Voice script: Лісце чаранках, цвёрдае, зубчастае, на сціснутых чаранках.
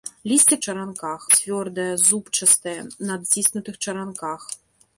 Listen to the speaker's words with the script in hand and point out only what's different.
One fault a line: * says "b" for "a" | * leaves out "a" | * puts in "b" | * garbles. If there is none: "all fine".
all fine